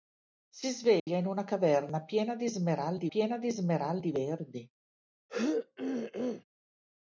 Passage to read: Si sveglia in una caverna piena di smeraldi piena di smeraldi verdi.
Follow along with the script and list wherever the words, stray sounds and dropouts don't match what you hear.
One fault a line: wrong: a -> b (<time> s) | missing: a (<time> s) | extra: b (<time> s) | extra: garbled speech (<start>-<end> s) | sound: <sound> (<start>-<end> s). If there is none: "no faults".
sound: dropout (1.0-1.1 s)
sound: throat clearing (5.3-6.4 s)